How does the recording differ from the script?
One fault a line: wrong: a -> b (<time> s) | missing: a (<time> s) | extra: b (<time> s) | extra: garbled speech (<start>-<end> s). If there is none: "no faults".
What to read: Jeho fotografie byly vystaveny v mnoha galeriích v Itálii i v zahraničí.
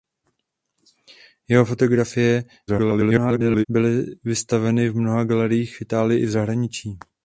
extra: garbled speech (2.7-3.7 s)